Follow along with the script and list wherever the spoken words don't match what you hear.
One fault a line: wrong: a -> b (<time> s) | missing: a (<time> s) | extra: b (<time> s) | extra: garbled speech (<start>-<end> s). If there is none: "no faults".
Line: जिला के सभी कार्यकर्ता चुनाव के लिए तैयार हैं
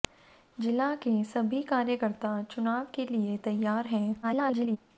extra: garbled speech (4.2-4.8 s)